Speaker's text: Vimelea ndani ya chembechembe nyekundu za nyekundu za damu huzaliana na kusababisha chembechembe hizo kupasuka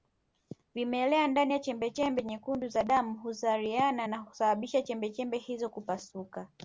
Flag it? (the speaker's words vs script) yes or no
yes